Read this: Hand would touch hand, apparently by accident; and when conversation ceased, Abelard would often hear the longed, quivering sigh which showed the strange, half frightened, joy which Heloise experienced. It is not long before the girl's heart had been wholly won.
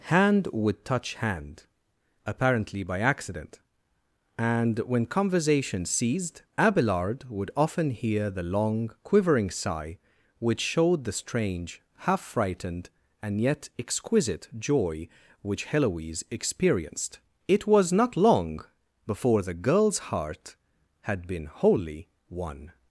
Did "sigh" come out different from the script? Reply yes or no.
no